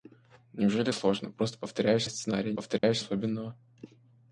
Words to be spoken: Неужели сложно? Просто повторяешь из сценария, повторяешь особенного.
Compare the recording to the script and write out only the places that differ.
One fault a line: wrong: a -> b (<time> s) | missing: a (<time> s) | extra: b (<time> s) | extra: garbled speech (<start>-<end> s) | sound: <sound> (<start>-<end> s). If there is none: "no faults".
sound: dropout (2.8-2.8 s)